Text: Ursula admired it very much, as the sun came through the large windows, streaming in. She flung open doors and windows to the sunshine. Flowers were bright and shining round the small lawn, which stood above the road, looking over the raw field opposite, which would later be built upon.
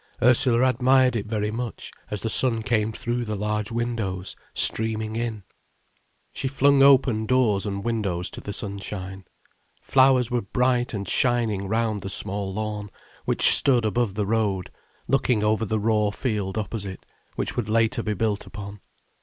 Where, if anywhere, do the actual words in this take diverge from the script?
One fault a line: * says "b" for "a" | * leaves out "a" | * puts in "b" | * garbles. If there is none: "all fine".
all fine